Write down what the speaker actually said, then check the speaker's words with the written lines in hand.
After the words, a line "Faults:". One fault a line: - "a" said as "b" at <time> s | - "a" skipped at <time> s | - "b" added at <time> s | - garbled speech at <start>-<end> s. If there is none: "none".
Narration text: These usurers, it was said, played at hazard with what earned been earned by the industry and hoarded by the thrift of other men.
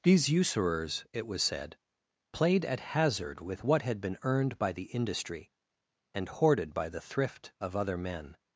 These usurers, it was said, played at hazard with what had been earned by the industry and hoarded by the thrift of other men.
Faults:
- "earned" said as "had" at 3.8 s